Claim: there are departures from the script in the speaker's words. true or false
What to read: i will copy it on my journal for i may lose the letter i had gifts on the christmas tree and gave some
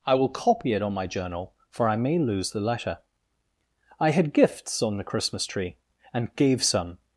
false